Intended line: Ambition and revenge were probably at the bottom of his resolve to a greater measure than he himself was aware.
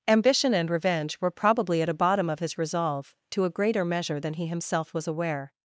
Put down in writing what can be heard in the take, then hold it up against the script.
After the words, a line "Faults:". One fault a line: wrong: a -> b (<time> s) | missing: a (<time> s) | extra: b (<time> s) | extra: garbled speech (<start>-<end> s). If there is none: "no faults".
Ambition and revenge were probably at a bottom of his resolve to a greater measure than he himself was aware.
Faults:
wrong: the -> a (1.9 s)